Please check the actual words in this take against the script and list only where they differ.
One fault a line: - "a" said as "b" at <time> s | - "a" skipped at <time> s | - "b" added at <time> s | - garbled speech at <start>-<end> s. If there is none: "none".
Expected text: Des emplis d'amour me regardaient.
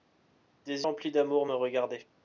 none